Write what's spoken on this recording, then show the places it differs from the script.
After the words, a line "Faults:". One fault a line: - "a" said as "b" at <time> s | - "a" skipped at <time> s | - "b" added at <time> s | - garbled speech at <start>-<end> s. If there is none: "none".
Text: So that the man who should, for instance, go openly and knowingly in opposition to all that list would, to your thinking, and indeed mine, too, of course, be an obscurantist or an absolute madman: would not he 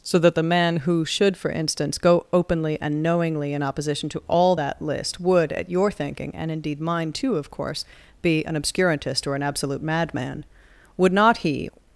So that the man who should, for instance, go openly and knowingly in opposition to all that list would, at your thinking, and indeed mine, too, of course, be an obscurantist or an absolute madman: would not he
Faults:
- "to" said as "at" at 5.5 s